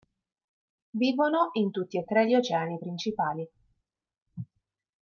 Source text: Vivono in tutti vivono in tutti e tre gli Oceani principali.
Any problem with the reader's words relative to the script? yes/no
yes